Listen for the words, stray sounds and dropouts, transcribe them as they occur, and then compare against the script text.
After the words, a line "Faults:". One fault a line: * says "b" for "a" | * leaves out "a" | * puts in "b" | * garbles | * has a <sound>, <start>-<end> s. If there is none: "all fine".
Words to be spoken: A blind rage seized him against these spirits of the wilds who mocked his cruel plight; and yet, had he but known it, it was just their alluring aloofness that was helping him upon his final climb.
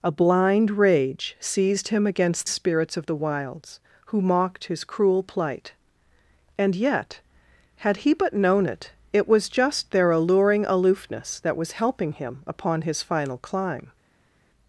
A blind rage seized him against spirits of the wilds who mocked his cruel plight; and yet, had he but known it, it was just their alluring aloofness that was helping him upon his final climb.
Faults:
* leaves out "these"